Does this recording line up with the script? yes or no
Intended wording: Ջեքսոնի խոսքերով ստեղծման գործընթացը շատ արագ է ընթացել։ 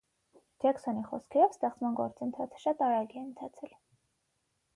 yes